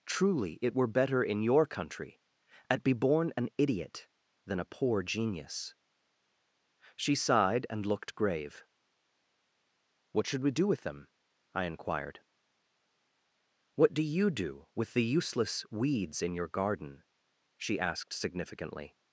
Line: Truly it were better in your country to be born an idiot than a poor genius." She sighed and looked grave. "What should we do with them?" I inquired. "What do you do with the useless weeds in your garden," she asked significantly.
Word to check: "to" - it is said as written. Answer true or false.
false